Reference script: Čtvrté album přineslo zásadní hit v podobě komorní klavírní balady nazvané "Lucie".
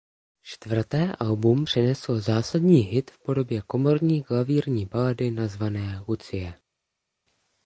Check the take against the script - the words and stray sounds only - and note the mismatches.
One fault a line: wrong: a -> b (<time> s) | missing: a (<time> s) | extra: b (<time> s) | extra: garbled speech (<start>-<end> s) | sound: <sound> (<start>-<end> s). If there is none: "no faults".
no faults